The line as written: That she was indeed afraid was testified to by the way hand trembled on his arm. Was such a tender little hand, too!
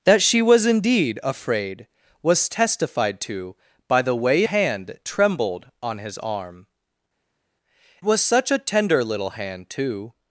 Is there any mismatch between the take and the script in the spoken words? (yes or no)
no